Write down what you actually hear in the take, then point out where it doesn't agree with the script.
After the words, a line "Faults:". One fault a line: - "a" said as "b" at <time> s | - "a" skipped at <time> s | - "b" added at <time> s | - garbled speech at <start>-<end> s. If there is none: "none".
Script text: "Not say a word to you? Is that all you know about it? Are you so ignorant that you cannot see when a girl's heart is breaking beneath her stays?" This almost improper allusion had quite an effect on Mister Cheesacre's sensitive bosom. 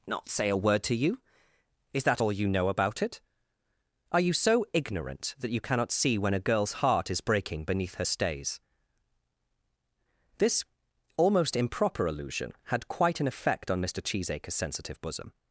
"Not say a word to you? Is that all you know about it? Are you so ignorant that you cannot see when a girl's heart is breaking beneath her stays?" This almost improper allusion had quite an effect on Mister Cheesacre's sensitive bosom.
Faults:
none